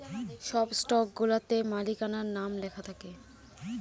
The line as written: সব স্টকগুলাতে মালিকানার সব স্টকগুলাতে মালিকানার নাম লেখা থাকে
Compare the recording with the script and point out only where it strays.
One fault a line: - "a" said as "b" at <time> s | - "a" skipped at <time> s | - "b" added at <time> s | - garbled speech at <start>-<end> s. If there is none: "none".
- "সব স্টকগুলাতে মালিকানার" skipped at 2.3 s